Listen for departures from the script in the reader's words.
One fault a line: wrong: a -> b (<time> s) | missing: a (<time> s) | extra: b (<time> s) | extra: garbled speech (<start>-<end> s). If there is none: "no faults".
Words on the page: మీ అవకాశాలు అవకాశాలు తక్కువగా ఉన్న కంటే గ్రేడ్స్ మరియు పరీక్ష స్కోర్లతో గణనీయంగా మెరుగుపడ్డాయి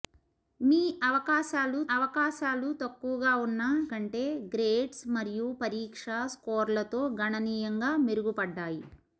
no faults